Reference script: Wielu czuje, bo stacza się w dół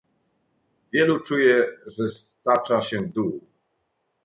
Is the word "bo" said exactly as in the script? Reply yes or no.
no